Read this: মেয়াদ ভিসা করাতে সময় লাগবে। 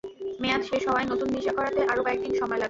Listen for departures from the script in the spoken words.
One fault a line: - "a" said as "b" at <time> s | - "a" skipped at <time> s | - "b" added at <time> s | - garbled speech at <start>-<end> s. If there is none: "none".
- "শেষ হওয়ায় নতুন" added at 0.6 s
- "আরও কয়েক দিন" added at 1.8 s